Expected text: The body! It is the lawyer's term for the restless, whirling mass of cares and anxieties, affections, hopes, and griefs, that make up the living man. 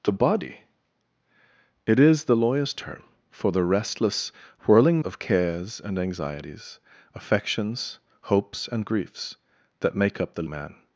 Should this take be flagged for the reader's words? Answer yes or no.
yes